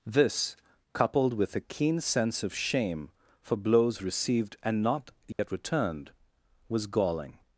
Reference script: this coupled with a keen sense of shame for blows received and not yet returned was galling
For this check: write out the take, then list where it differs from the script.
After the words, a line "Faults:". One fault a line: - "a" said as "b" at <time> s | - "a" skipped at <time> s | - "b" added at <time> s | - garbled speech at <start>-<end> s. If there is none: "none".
this coupled with a keen sense of shame for blows received and not yet returned was galling
Faults:
none